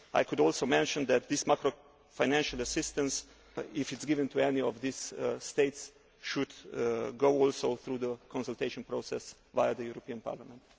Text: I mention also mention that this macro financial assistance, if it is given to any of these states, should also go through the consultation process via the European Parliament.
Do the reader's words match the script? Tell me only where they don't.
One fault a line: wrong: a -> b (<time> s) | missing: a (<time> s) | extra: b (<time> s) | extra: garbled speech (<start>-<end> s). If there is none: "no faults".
wrong: mention -> could (0.2 s)